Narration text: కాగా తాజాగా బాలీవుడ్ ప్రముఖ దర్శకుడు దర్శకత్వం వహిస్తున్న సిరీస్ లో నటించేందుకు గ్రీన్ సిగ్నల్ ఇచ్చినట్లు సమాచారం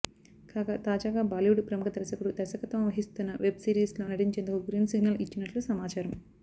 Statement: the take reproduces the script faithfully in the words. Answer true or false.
false